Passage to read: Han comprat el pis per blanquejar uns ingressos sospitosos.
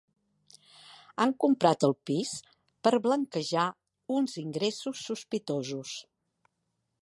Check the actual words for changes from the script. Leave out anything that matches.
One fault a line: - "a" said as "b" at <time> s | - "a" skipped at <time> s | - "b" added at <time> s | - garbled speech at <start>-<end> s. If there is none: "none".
none